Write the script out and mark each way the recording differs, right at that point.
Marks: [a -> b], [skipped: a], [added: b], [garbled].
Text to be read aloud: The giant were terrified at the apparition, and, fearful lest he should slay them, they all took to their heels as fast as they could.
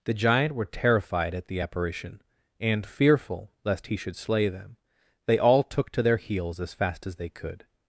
The giant were terrified at the apparition, and, fearful lest he should slay them, they all took to their heels as fast as they could.